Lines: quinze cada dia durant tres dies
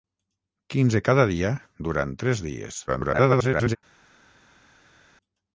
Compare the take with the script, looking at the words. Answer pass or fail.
fail